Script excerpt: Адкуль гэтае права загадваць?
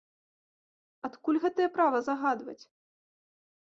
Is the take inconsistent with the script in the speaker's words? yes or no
no